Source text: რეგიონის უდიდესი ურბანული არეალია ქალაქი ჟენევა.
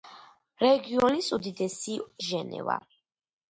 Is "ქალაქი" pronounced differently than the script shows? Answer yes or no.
yes